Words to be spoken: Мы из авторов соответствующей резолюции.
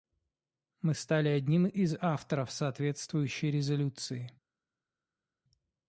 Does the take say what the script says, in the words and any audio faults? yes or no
no